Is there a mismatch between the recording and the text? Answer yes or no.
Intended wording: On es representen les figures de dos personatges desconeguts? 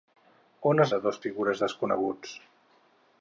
yes